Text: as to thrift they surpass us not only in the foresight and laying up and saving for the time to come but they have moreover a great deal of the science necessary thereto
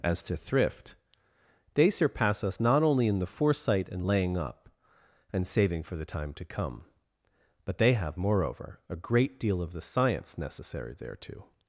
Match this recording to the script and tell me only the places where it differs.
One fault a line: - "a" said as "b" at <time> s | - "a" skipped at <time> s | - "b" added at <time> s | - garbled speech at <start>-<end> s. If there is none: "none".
none